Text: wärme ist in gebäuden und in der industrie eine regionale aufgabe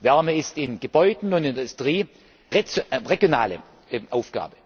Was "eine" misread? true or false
true